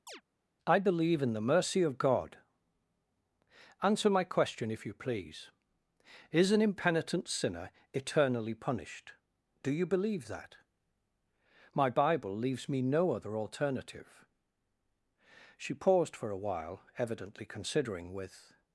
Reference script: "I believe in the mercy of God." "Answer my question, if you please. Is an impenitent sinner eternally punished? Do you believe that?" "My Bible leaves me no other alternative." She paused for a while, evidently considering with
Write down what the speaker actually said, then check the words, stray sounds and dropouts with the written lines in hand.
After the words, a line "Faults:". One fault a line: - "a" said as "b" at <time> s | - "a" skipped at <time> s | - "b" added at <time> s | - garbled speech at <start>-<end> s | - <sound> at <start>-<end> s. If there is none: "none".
"I believe in the mercy of God." "Answer my question, if you please. Is an impenitent sinner eternally punished? Do you believe that?" "My Bible leaves me no other alternative." She paused for a while, evidently considering with
Faults:
- chirp at 0.1-0.2 s